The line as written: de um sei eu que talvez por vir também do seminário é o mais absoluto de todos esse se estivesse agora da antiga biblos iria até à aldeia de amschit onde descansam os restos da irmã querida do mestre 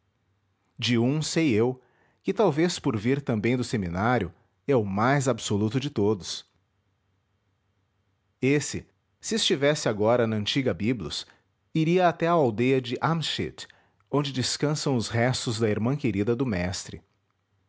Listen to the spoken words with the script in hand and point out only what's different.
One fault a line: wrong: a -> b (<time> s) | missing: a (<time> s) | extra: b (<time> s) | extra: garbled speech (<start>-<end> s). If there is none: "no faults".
wrong: da -> na (10.3 s)